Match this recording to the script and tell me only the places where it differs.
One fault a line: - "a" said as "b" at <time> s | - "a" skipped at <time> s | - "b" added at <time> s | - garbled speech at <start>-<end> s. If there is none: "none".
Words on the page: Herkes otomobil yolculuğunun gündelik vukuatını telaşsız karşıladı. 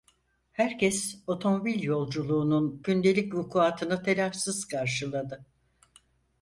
none